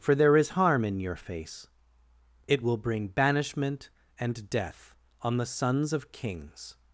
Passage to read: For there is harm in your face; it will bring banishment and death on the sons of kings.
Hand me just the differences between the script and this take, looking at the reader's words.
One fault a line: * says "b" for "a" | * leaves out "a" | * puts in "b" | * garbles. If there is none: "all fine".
all fine